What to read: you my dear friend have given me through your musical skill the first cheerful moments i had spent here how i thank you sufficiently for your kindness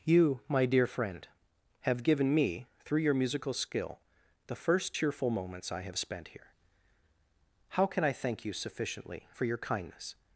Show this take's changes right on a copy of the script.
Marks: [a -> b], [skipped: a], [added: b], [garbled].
you my dear friend have given me through your musical skill the first cheerful moments i [had -> have] spent here how [added: can] i thank you sufficiently for your kindness